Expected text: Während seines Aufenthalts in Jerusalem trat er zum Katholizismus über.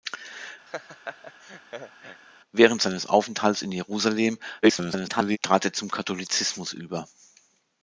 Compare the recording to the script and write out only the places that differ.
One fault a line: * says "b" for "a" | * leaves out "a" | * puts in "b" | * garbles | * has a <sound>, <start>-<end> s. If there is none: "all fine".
* has a laugh, 0.7-2.2 s
* garbles